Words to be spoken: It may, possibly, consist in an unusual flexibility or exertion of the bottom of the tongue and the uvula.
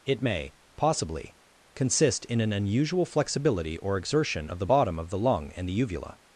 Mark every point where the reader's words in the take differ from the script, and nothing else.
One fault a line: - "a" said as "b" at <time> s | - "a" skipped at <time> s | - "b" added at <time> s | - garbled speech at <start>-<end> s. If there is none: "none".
- "tongue" said as "lung" at 5.2 s